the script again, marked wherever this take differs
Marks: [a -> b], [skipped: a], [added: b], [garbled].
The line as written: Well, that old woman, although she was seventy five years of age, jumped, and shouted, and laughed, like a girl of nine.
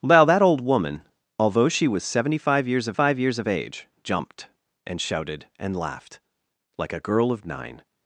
Well, that old woman, although she was seventy five years of [added: five years of] age, jumped, and shouted, and laughed, like a girl of nine.